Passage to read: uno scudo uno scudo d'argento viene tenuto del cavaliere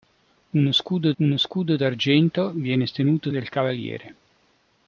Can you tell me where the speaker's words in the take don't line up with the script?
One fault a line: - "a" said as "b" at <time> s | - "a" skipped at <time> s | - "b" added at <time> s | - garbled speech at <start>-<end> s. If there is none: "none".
none